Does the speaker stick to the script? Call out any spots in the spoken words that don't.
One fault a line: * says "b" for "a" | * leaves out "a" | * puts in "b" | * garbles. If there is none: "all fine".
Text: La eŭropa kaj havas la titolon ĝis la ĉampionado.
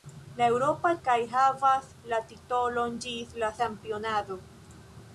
all fine